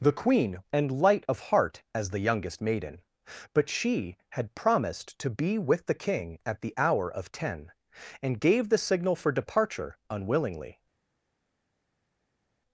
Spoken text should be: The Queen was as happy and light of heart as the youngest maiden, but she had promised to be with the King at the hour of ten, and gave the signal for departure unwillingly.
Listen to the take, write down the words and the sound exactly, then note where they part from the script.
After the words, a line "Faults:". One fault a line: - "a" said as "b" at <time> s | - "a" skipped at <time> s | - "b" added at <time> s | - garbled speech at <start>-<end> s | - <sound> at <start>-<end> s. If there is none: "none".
The Queen and light of heart as the youngest maiden, but she had promised to be with the King at the hour of ten, and gave the signal for departure unwillingly.
Faults:
- "was as happy" skipped at 0.6 s